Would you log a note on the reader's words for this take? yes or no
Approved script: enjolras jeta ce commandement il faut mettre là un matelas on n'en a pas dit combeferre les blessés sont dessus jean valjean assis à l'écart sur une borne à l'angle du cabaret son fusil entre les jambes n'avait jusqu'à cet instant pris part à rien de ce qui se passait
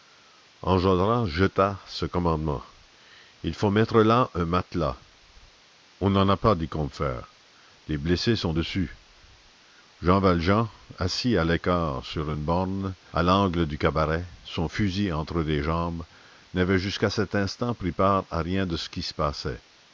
no